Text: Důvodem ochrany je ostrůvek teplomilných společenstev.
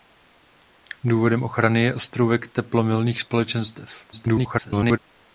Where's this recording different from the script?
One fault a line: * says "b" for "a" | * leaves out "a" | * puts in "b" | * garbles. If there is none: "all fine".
* garbles